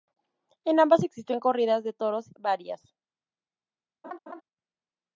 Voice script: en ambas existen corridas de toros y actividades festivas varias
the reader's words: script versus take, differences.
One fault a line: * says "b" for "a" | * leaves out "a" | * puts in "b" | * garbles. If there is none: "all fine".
* leaves out "y actividades festivas"